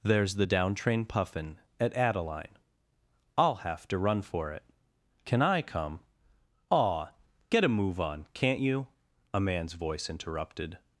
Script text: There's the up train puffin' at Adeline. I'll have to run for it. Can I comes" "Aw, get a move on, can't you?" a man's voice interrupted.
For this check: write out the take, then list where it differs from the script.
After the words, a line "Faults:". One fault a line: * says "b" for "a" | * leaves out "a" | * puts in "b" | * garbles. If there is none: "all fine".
There's the down train puffin' at Adeline. I'll have to run for it. Can I come" "Aw, get a move on, can't you?" a man's voice interrupted.
Faults:
* says "down" for "up"
* says "come" for "comes"